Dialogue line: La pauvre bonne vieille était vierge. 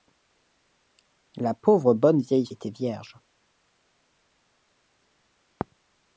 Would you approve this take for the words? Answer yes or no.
yes